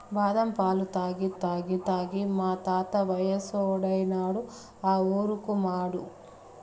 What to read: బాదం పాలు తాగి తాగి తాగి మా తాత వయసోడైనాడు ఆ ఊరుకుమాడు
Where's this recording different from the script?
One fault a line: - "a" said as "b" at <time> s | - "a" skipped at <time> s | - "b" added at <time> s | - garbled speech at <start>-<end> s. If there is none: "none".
none